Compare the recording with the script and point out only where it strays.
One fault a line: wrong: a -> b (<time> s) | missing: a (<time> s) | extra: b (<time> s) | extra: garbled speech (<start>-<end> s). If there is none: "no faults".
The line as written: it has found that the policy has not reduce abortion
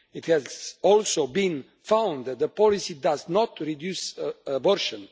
extra: also been (0.8 s)
wrong: has -> does (2.9 s)